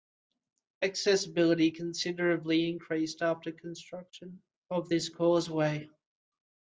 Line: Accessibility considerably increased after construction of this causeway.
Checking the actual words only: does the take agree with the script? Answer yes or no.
yes